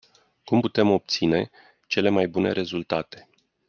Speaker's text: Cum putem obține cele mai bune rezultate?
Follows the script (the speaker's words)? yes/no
yes